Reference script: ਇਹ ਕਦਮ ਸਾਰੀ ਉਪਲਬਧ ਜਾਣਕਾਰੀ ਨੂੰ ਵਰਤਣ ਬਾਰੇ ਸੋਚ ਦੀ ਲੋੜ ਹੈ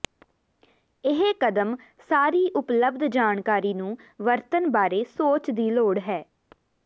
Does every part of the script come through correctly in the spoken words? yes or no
yes